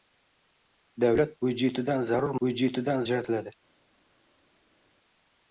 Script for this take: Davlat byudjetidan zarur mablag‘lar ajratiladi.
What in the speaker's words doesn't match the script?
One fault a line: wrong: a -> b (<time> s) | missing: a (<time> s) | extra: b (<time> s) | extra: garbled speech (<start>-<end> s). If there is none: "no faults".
wrong: mablag‘lar -> byudjetidan (2.4 s)